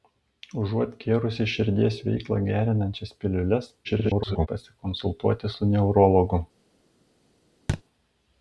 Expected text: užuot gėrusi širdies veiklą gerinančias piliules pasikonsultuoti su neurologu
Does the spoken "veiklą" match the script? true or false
true